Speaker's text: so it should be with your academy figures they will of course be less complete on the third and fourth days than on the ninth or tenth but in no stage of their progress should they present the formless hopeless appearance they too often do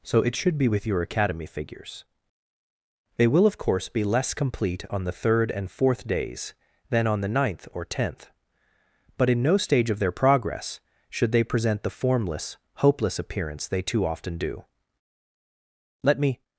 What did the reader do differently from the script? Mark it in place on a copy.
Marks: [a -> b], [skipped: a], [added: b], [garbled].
so it should be with your academy figures they will of course be less complete on the third and fourth days than on the ninth or tenth but in no stage of their progress should they present the formless hopeless appearance they too often do [added: let me]